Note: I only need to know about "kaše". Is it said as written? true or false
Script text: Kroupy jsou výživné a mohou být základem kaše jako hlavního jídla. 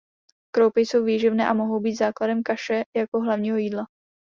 true